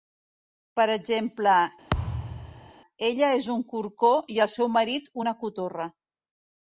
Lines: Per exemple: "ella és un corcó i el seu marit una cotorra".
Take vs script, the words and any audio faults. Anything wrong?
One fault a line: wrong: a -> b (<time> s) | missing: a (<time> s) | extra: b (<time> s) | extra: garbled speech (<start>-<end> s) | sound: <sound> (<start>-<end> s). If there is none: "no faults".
sound: thud (1.9-2.7 s)